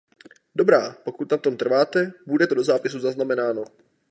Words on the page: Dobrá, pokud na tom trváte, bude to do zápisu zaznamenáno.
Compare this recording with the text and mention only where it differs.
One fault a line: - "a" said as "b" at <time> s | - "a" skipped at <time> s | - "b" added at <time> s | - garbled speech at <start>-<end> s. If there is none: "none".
none